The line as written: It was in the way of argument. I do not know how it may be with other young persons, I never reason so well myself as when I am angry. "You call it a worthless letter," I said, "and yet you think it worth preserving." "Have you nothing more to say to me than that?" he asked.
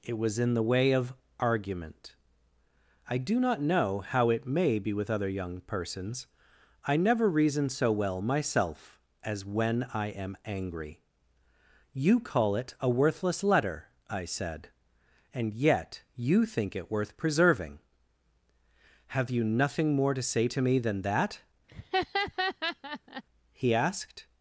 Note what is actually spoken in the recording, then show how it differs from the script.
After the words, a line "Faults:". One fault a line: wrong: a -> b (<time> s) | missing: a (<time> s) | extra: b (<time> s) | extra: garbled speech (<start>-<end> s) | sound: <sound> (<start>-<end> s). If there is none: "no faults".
It was in the way of argument. I do not know how it may be with other young persons, I never reason so well myself as when I am angry. "You call it a worthless letter," I said, "and yet you think it worth preserving." "Have you nothing more to say to me than that?" he asked.
Faults:
sound: laugh (21.7-23.2 s)